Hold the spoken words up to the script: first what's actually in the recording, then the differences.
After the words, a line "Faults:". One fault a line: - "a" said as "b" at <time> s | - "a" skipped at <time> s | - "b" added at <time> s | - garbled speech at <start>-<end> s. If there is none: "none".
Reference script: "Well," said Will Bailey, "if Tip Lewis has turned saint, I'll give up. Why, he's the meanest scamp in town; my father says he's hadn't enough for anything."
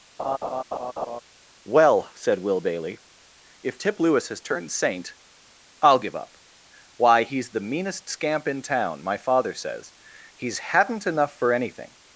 "Well," said Will Bailey, "if Tip Lewis has turned saint, I'll give up. Why, he's the meanest scamp in town; my father says he's hadn't enough for anything."
Faults:
none